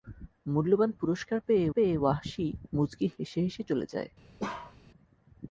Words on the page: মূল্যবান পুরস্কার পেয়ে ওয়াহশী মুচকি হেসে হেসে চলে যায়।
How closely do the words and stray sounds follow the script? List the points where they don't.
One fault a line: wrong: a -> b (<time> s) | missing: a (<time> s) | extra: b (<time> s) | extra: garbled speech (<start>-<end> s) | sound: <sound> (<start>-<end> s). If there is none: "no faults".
extra: পেয়ে (1.7 s)
sound: bark (4.4-4.8 s)